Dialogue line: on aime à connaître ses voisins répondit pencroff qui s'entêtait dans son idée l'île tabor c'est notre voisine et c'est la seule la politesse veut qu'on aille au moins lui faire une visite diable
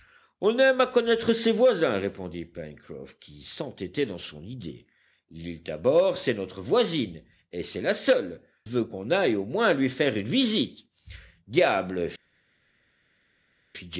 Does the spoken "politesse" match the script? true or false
false